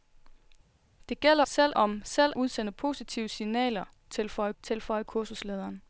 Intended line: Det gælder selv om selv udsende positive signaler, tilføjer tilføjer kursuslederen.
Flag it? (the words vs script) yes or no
no